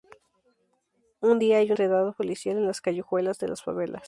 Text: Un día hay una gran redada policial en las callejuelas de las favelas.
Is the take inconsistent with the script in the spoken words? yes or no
yes